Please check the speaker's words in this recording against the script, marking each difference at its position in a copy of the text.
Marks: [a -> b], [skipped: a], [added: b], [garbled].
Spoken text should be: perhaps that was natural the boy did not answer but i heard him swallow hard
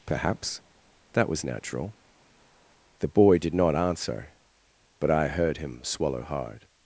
perhaps that was natural the boy did not answer but i heard him swallow hard